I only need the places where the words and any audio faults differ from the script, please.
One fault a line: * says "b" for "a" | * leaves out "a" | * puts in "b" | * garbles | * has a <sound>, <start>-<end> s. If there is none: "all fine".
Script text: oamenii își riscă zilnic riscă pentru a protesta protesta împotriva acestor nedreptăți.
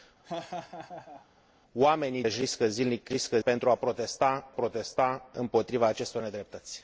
* has a laugh, 0.2-1.3 s